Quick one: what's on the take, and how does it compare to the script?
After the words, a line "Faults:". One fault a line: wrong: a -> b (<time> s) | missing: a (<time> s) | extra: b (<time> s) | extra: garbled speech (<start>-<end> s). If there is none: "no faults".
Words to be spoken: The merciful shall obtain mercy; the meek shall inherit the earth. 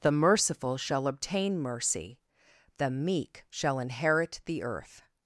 The merciful shall obtain mercy; the meek shall inherit the earth.
Faults:
no faults